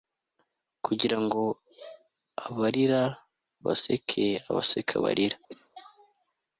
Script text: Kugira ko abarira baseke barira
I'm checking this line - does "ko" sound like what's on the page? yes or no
no